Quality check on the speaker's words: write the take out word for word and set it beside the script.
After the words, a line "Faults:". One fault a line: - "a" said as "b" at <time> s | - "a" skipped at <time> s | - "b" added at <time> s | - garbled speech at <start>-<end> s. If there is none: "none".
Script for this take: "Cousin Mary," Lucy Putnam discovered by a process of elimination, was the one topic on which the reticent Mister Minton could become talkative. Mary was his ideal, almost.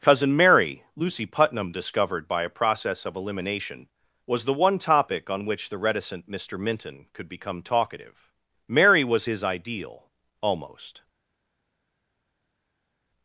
"Cousin Mary," Lucy Putnam discovered by a process of elimination, was the one topic on which the reticent Mister Minton could become talkative. Mary was his ideal, almost.
Faults:
none